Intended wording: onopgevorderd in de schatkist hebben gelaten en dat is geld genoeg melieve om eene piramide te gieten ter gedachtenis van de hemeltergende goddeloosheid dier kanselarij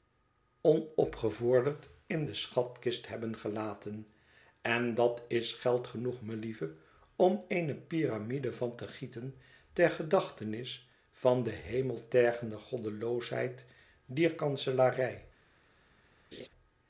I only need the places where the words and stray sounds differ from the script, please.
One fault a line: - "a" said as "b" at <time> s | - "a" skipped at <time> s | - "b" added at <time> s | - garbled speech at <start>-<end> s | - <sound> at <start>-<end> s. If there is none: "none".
- "van" added at 8.5 s
- laugh at 16.3-16.5 s